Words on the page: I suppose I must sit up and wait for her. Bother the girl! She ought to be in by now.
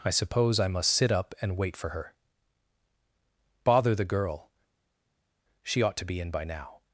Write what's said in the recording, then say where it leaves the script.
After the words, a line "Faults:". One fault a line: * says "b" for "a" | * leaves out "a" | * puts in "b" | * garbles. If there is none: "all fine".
I suppose I must sit up and wait for her. Bother the girl! She ought to be in by now.
Faults:
all fine